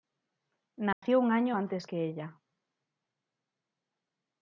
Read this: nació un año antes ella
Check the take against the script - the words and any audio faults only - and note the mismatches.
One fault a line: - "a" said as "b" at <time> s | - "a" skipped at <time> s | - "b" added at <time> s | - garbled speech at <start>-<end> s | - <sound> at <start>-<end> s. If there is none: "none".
- dropout at 0.9-1.0 s
- "que" added at 1.8 s